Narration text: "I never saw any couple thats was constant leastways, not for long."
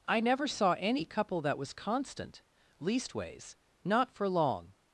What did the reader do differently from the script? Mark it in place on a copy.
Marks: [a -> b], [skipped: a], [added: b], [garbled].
"I never saw any couple [thats -> that] was constant leastways, not for long."